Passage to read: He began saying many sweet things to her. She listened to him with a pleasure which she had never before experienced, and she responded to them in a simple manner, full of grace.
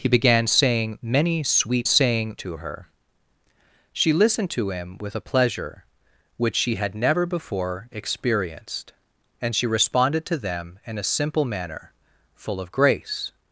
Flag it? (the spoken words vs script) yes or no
yes